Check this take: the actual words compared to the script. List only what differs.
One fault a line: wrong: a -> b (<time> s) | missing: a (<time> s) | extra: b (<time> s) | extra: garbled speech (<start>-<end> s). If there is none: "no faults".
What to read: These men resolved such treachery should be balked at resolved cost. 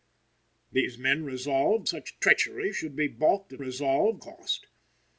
no faults